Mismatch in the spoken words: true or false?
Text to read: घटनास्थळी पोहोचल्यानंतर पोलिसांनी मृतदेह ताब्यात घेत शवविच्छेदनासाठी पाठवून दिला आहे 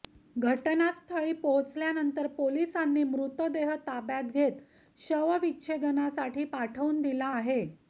false